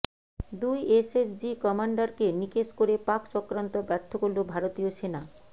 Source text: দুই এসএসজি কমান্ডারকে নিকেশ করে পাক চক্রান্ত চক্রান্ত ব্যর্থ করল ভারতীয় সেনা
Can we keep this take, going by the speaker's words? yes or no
no